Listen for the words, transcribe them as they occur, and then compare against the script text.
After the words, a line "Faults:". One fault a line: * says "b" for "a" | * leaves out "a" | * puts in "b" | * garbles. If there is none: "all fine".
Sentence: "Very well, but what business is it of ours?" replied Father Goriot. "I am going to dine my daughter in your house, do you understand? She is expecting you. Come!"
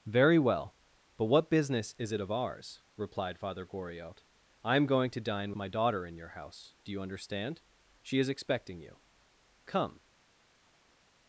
"Very well, but what business is it of ours?" replied Father Goriot. "I am going to dine my daughter in your house, do you understand? She is expecting you. Come!"
Faults:
all fine